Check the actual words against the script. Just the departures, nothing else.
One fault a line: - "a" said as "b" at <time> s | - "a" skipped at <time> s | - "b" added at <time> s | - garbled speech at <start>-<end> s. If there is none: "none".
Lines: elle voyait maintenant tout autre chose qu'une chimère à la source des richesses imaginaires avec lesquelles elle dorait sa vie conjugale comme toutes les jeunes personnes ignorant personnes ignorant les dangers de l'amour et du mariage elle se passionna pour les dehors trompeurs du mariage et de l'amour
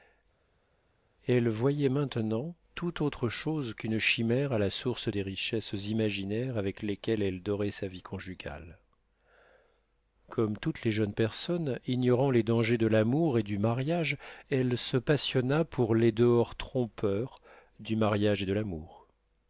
- "personnes ignorant" skipped at 12.3 s